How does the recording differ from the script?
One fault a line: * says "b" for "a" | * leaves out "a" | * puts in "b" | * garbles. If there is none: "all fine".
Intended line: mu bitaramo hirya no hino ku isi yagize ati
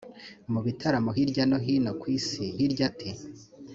* says "hirya" for "yagize"